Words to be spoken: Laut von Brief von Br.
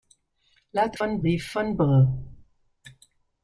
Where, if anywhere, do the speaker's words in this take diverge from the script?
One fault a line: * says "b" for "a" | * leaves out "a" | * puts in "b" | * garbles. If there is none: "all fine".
all fine